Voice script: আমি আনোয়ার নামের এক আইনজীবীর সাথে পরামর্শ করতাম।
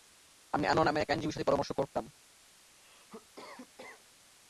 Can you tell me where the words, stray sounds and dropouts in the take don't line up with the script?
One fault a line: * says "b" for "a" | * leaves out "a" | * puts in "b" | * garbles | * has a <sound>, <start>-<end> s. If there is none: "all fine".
* has a cough, 2.7-4.1 s